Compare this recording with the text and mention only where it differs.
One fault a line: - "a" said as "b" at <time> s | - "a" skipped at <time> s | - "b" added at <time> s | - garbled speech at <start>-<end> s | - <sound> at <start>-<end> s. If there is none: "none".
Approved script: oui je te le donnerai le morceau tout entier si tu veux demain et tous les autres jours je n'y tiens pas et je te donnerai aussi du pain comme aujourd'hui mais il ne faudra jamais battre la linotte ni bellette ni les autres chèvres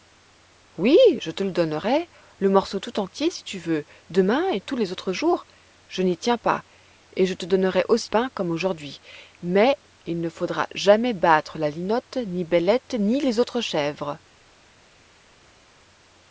- "du" skipped at 8.1 s